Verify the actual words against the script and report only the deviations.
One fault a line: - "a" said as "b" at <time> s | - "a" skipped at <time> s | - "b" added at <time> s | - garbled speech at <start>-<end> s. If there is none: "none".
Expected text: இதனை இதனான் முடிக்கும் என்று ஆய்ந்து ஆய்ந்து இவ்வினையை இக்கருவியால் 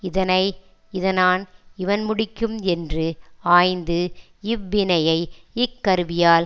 - "இவன்" added at 1.8 s
- "ஆய்ந்து" skipped at 4.0 s